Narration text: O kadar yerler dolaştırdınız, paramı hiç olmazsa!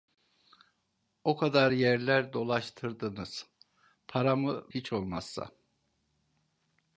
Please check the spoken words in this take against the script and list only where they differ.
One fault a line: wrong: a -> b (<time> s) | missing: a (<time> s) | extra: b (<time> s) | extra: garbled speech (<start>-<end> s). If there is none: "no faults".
no faults